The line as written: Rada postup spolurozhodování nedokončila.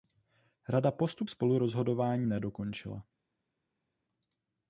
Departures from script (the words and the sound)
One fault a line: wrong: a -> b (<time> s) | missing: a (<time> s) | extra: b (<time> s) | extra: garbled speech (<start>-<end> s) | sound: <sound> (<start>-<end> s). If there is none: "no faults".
no faults